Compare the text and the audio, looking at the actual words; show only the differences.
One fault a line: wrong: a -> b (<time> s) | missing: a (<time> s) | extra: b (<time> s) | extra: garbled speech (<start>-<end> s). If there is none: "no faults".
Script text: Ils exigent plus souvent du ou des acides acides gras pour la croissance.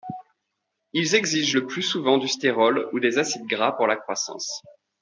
extra: le (1.5 s)
extra: stérol (2.3 s)
missing: acides (3.5 s)